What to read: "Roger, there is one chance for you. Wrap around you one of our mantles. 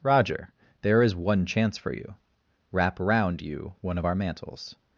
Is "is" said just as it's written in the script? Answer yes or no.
yes